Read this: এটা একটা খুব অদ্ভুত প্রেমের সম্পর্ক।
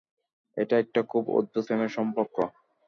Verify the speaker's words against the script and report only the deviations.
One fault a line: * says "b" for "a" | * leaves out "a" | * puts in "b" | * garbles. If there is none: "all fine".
all fine